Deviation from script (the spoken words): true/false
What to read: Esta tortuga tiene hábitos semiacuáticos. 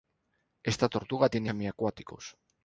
true